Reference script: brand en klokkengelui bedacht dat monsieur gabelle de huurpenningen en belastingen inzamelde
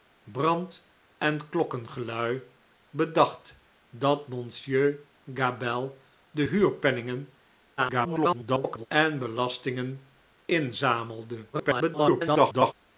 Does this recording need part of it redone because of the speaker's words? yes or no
yes